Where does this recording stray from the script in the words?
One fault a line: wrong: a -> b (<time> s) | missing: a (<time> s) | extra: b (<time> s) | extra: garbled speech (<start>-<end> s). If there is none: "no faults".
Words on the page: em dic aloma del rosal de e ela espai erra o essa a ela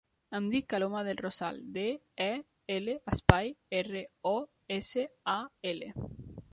no faults